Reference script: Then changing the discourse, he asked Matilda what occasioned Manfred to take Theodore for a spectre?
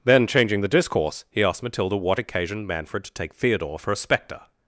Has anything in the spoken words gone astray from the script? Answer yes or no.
no